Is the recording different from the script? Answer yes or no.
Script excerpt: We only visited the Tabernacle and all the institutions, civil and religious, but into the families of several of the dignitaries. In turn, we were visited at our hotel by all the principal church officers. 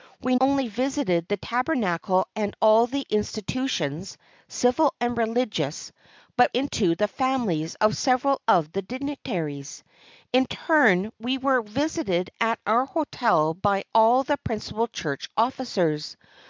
no